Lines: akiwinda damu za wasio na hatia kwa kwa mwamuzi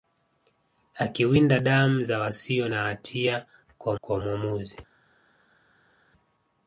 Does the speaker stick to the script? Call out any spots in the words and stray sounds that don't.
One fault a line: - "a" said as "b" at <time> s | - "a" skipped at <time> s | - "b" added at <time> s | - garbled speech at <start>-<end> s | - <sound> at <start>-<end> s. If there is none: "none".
none